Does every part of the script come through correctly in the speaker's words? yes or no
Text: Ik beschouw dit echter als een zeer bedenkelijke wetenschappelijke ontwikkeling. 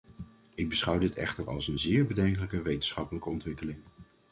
yes